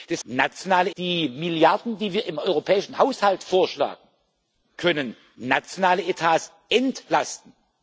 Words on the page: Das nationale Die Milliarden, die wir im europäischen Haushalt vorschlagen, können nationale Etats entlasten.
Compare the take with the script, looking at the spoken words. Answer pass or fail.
pass